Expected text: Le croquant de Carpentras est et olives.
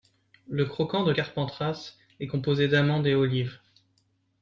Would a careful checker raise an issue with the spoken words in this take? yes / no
yes